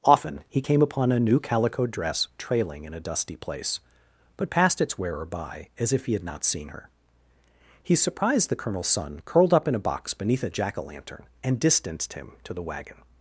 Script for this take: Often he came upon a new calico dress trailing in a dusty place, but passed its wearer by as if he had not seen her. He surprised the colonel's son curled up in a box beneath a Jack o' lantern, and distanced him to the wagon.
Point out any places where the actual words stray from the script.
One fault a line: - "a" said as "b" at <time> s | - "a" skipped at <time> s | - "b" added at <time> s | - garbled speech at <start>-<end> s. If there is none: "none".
none